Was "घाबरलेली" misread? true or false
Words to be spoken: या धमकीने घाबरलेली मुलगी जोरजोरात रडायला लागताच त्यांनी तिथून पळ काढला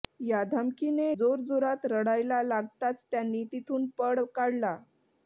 true